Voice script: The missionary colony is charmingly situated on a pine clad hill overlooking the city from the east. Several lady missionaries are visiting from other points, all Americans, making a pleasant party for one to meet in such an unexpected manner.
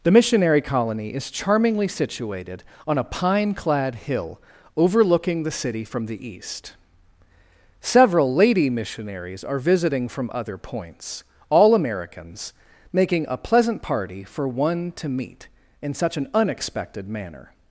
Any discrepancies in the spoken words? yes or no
no